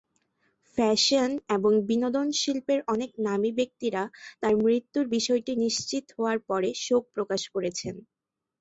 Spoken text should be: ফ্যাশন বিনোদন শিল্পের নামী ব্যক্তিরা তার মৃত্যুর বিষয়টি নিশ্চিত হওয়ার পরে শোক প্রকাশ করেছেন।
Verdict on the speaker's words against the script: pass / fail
fail